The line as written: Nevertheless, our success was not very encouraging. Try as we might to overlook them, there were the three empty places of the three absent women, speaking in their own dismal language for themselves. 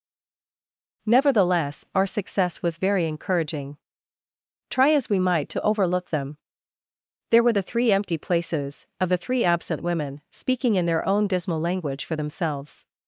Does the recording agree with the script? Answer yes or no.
no